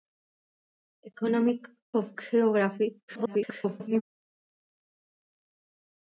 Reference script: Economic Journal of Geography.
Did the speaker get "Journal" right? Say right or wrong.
wrong